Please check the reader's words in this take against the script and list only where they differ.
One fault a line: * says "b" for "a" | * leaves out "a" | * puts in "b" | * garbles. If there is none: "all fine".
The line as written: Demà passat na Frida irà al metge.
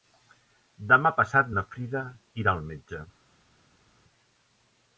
all fine